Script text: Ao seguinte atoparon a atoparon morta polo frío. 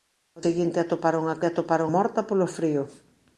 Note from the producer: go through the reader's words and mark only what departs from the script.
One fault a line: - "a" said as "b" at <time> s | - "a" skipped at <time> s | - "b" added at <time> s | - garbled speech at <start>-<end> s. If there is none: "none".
none